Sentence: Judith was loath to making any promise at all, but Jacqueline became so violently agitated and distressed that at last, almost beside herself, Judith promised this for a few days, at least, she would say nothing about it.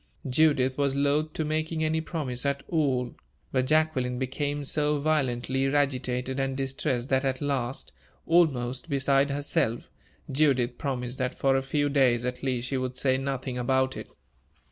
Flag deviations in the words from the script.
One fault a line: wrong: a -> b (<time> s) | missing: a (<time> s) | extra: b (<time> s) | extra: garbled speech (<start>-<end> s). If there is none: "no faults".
wrong: this -> that (11.2 s)